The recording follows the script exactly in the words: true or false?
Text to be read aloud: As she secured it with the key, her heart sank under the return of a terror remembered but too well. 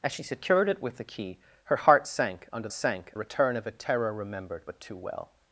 false